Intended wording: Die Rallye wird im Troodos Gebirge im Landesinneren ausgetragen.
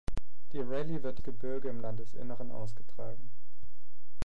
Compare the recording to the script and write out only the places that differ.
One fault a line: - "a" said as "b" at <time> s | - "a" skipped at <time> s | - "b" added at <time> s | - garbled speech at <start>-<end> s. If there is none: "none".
- "im Troodos" skipped at 1.2 s